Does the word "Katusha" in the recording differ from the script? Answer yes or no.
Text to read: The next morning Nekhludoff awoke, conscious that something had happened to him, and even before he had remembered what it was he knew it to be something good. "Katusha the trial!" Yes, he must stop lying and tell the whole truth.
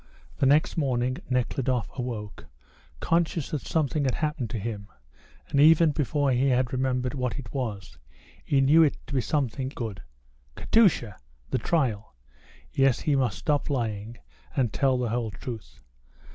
no